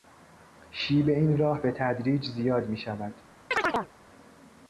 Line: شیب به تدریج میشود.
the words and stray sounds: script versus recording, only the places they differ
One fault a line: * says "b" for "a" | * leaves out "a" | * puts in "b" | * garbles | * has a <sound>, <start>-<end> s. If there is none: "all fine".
* puts in "این راه"
* puts in "زیاد"
* has a chirp, 3.5-3.9 s